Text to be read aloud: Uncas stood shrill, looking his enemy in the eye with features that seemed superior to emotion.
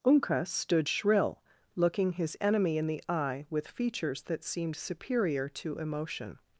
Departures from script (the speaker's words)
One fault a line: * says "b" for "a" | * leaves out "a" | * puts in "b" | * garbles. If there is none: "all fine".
all fine